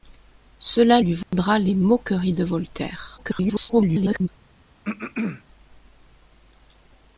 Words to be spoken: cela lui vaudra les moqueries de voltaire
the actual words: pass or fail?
fail